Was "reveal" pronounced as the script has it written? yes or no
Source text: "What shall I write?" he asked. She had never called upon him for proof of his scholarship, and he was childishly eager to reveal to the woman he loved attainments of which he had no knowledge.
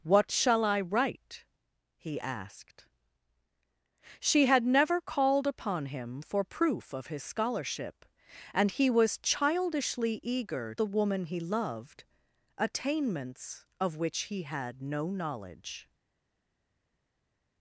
no